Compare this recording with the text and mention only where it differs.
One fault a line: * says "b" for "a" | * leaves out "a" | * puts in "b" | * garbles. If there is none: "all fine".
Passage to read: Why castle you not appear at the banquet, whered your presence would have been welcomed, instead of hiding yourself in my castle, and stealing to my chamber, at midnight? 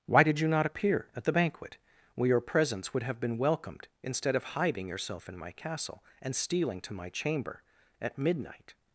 * says "did" for "castle"
* says "where" for "whered"